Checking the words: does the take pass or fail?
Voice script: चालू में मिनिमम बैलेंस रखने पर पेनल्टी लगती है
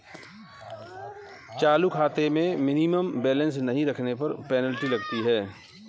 fail